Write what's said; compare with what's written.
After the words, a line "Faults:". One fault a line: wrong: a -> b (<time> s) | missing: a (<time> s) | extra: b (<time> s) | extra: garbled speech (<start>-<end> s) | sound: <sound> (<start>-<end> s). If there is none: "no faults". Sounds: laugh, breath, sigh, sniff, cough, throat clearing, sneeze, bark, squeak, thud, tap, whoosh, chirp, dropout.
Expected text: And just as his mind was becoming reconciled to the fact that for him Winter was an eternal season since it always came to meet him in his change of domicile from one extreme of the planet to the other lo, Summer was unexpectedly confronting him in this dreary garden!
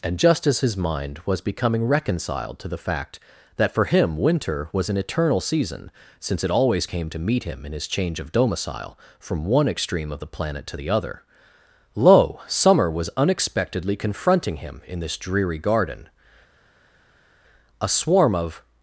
And just as his mind was becoming reconciled to the fact that for him Winter was an eternal season since it always came to meet him in his change of domicile from one extreme of the planet to the other lo, Summer was unexpectedly confronting him in this dreary garden! A swarm of
Faults:
extra: A swarm of (17.8 s)